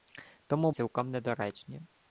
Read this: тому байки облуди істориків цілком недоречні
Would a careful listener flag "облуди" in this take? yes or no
yes